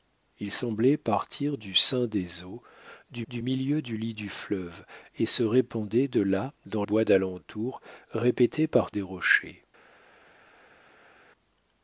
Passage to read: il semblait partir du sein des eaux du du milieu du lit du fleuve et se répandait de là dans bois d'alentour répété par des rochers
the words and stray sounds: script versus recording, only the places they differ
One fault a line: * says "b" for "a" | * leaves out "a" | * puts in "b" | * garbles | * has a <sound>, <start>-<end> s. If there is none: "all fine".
all fine